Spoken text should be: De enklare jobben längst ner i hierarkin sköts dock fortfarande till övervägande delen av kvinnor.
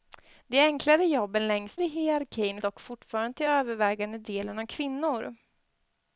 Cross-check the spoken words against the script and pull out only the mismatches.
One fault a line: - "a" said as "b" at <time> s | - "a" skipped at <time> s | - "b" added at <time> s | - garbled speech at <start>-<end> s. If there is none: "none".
- "ner" skipped at 1.8 s
- "sköts" skipped at 2.6 s